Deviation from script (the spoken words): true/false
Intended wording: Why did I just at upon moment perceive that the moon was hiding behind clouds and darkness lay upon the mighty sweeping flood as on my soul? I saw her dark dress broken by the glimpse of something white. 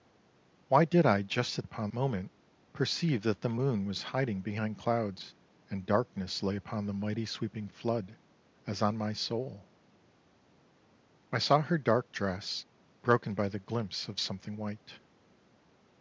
false